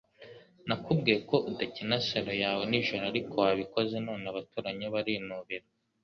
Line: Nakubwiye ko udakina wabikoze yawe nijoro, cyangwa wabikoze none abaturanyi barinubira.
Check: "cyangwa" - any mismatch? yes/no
yes